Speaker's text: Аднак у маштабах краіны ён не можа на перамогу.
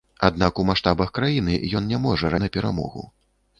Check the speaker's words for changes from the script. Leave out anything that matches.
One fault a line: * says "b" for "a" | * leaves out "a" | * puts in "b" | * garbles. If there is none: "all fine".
all fine